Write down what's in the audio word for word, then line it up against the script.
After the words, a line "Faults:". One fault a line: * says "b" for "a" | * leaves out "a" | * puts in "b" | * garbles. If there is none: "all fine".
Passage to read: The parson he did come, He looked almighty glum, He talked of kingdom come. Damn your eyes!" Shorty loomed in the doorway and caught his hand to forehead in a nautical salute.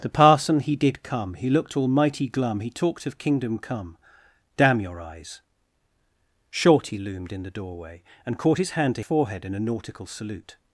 The parson he did come, He looked almighty glum, He talked of kingdom come. Damn your eyes!" Shorty loomed in the doorway and caught his hand to forehead in a nautical salute.
Faults:
all fine